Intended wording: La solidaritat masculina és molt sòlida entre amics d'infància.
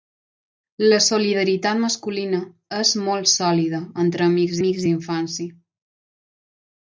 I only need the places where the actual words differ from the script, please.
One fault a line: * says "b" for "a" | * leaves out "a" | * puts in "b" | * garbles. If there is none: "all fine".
* puts in "amics"